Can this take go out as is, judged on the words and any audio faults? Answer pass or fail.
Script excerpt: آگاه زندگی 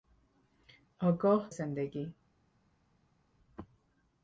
pass